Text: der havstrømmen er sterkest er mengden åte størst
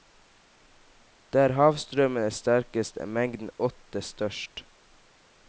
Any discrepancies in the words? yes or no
no